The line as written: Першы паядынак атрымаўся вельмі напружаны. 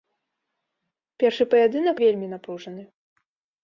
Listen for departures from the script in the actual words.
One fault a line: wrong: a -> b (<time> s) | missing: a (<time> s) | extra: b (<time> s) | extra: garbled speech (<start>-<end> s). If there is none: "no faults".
missing: атрымаўся (1.9 s)